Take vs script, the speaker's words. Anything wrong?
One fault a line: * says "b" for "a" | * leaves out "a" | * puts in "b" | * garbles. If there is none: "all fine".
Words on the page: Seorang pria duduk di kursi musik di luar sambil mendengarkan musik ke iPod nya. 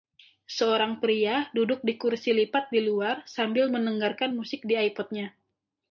* says "lipat" for "musik"
* says "di" for "ke"